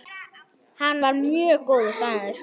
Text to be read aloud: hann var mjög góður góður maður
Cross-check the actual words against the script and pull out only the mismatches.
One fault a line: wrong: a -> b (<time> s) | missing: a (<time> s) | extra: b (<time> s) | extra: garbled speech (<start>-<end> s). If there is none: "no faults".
missing: góður (1.9 s)